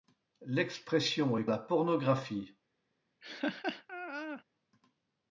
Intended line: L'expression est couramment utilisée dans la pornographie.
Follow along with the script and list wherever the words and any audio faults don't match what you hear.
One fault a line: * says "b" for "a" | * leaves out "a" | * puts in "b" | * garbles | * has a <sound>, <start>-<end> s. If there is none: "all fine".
* leaves out "couramment utilisée dans"
* has a laugh, 3.2-4.4 s